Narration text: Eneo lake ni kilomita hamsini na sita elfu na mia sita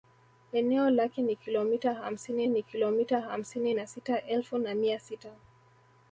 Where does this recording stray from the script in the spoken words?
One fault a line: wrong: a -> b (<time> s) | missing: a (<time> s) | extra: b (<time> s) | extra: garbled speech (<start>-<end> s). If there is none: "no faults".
extra: ni kilomita hamsini (2.5 s)